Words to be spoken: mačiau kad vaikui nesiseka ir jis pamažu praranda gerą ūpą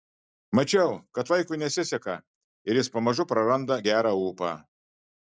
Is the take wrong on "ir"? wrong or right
right